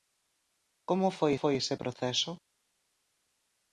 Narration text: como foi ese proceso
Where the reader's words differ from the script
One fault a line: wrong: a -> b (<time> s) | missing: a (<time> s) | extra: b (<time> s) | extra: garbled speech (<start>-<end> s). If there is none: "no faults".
extra: foi (1.4 s)